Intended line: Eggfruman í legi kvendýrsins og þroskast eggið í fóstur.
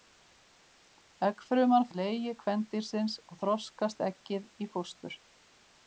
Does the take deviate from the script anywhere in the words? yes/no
no